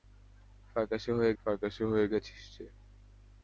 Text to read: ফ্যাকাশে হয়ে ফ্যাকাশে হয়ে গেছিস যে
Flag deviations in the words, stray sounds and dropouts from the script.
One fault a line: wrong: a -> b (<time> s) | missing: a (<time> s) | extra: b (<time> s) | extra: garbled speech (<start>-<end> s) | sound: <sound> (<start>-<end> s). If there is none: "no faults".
no faults